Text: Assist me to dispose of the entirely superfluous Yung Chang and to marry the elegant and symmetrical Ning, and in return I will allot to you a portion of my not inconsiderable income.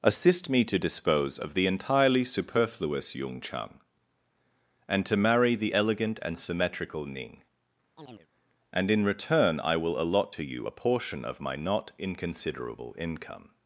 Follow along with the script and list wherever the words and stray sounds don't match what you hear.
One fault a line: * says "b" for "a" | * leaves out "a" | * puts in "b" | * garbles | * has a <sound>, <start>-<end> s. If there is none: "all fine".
* has a chirp, 8.0-8.3 s